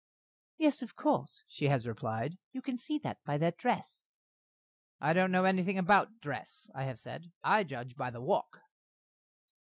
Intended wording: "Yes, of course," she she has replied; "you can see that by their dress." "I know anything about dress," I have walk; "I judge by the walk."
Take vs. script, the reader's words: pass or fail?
fail